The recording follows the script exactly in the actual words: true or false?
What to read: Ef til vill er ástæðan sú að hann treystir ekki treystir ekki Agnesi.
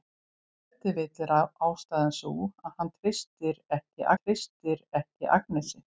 true